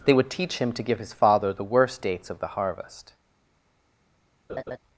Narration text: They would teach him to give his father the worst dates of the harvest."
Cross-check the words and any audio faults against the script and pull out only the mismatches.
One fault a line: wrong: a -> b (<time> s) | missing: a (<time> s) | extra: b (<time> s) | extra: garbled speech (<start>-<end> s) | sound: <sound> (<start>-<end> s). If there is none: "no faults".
sound: laugh (4.5-4.8 s)